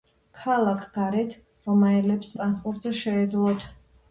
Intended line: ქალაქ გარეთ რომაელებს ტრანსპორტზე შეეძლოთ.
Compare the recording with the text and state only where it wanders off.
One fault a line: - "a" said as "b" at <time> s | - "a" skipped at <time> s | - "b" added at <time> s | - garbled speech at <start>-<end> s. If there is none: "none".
none